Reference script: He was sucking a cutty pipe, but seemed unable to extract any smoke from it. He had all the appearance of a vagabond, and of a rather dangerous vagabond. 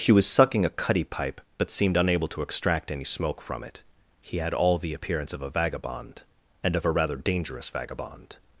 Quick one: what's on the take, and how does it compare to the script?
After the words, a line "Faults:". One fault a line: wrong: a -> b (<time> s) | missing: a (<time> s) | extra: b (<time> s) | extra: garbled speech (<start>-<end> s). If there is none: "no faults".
He was sucking a cutty pipe, but seemed unable to extract any smoke from it. He had all the appearance of a vagabond, and of a rather dangerous vagabond.
Faults:
no faults